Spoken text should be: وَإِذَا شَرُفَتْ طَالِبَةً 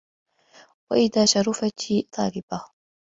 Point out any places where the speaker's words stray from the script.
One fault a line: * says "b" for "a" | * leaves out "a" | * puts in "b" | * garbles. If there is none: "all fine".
all fine